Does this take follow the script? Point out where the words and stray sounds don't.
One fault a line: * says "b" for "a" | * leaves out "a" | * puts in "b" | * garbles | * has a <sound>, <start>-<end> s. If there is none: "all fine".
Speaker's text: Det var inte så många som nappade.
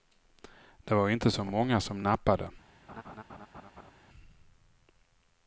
* has a laugh, 2.9-3.9 s